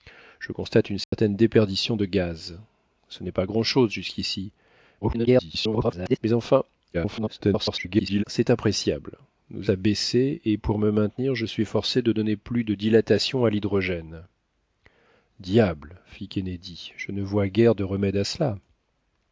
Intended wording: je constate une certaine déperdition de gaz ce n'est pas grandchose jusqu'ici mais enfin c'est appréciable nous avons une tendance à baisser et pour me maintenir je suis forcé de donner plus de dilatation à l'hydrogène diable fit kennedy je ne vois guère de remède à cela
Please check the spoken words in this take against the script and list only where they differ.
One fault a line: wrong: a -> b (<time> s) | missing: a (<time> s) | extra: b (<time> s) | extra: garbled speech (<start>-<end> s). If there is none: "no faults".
extra: garbled speech (5.0-6.2 s)
extra: garbled speech (6.9-8.2 s)
missing: avons une tendance (9.7 s)